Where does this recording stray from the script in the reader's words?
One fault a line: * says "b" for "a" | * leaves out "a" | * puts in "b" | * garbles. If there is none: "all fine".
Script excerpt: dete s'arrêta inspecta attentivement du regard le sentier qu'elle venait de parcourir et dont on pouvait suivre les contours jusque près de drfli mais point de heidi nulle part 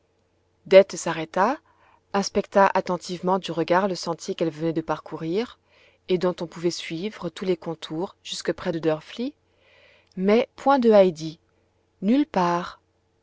* puts in "tous"